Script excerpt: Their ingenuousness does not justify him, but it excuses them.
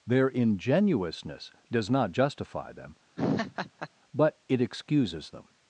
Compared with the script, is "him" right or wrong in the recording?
wrong